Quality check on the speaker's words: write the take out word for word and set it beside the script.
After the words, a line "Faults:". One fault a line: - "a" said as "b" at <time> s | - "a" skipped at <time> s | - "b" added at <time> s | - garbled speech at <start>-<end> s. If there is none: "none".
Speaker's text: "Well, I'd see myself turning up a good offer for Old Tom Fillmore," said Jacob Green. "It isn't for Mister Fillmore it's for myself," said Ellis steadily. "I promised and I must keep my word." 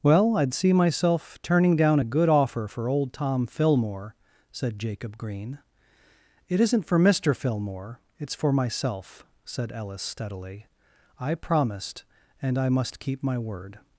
"Well, I'd see myself turning down a good offer for Old Tom Fillmore," said Jacob Green. "It isn't for Mister Fillmore it's for myself," said Ellis steadily. "I promised and I must keep my word."
Faults:
- "up" said as "down" at 1.8 s